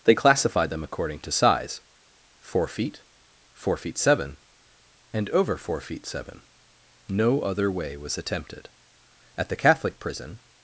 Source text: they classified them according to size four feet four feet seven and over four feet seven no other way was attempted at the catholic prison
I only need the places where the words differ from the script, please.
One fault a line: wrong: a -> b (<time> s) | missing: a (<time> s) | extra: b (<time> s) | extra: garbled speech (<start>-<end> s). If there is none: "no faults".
no faults